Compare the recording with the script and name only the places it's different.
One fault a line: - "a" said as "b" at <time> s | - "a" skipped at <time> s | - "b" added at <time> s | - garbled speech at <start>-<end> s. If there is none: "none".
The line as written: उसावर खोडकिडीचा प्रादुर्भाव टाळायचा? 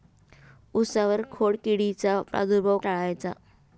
none